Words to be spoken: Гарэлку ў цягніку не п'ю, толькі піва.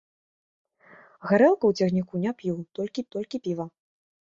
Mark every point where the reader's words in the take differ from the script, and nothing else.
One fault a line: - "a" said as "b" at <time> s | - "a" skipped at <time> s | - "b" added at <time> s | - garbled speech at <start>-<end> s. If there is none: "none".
- "толькі" added at 3.2 s